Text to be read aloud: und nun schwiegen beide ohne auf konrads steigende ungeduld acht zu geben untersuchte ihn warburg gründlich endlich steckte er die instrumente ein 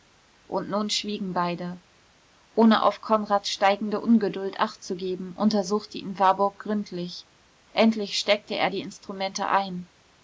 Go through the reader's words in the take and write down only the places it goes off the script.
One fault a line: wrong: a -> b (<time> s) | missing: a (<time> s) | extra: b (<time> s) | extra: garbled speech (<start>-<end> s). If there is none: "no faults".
no faults